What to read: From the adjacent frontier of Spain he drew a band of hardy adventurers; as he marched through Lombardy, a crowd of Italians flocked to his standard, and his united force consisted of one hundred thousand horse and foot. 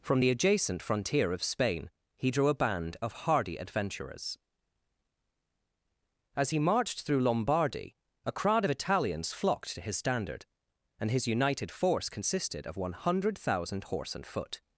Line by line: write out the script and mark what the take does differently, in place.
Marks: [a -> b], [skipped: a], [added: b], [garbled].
From the adjacent frontier of Spain he drew a band of hardy adventurers; as he marched through Lombardy, a crowd of Italians flocked to his standard, and his united force consisted of one hundred thousand horse and foot.